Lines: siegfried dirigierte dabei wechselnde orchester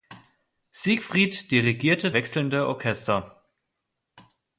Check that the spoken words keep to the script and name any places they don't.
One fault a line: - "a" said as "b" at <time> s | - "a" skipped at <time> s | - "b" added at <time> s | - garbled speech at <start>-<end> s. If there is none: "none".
- "dabei" skipped at 2.1 s